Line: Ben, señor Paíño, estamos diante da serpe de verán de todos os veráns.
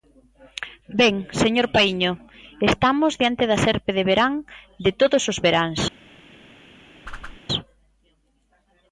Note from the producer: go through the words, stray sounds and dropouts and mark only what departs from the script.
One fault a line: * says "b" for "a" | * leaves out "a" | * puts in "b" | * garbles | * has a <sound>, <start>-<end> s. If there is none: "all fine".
* has a whoosh, 7.1-7.4 s